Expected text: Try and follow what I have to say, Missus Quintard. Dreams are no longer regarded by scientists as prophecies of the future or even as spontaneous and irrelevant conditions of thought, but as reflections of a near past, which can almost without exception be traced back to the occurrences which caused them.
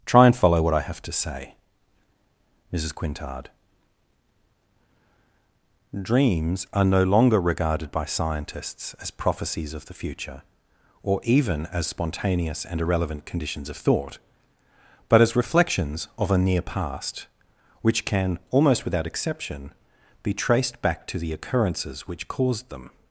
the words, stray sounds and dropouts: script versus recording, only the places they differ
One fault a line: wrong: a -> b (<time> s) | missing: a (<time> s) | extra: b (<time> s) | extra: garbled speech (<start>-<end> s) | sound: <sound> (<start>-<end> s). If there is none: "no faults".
no faults